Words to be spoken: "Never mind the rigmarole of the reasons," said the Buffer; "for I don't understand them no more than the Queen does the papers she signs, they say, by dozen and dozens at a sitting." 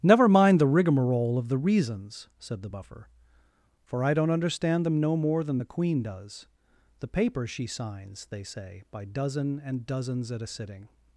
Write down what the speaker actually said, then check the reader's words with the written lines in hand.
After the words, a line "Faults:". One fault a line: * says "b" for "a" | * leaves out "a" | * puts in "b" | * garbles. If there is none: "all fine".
"Never mind the rigmarole of the reasons," said the Buffer; "for I don't understand them no more than the Queen does the papers she signs, they say, by dozen and dozens at a sitting."
Faults:
all fine